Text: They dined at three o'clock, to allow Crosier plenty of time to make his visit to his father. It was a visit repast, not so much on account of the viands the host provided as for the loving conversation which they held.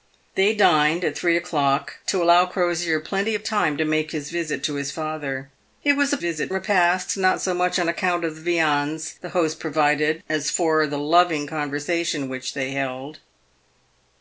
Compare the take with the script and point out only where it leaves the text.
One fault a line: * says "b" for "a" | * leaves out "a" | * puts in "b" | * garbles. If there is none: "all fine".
all fine